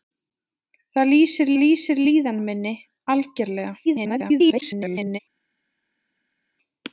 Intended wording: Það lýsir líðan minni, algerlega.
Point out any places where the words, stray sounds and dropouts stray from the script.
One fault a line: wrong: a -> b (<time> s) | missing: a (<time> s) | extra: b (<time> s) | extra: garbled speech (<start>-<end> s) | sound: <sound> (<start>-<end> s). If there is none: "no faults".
extra: lýsir (1.6 s)
extra: garbled speech (3.9-5.2 s)